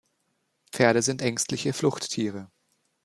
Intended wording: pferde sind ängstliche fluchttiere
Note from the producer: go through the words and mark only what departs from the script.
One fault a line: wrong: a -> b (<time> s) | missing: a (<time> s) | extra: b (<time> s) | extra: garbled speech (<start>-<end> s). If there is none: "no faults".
no faults